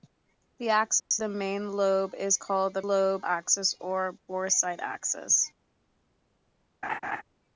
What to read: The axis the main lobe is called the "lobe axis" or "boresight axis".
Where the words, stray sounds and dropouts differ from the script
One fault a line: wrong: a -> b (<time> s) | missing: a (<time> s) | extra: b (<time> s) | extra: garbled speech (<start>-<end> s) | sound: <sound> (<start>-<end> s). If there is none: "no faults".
sound: dropout (1.0-1.1 s)
sound: laugh (6.8-7.2 s)